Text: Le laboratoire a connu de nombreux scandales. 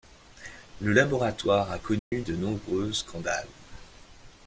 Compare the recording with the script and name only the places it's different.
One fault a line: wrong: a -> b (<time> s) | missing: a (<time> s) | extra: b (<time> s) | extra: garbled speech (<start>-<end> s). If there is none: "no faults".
no faults